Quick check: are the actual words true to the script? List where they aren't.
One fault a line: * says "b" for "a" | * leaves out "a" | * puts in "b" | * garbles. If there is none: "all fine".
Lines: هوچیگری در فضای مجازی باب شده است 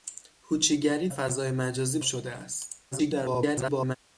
* leaves out "در"
* leaves out "باب"
* garbles